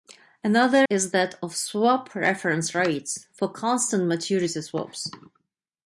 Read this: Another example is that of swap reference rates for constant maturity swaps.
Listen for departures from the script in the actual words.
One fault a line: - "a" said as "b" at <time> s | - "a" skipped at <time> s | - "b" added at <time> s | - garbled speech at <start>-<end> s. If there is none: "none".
- "example" skipped at 0.9 s